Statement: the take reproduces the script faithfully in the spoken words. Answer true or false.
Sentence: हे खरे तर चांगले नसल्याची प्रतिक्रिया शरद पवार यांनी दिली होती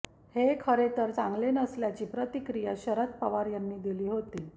true